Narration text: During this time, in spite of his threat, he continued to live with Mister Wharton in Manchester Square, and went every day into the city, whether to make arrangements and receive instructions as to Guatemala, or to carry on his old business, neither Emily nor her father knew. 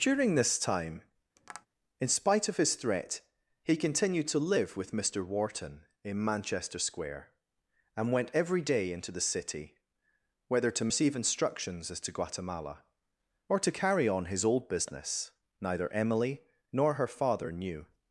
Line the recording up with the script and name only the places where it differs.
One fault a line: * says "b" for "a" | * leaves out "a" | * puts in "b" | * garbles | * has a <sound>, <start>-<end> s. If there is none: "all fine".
* has a tap, 1.4-1.7 s
* leaves out "make arrangements and"